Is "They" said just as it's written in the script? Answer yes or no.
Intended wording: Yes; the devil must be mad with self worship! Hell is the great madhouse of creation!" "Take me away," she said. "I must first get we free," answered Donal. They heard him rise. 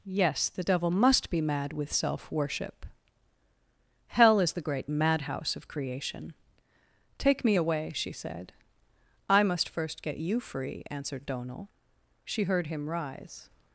no